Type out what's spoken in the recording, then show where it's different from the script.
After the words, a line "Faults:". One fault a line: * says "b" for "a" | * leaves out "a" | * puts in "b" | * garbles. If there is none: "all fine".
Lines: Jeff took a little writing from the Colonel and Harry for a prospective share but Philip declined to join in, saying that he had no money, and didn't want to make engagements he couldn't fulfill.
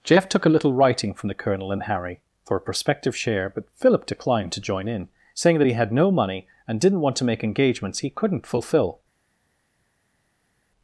Jeff took a little writing from the Colonel and Harry for a prospective share but Philip declined to join in, saying that he had no money, and didn't want to make engagements he couldn't fulfill.
Faults:
all fine